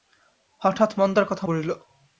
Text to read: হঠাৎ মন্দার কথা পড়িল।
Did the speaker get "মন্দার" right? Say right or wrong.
right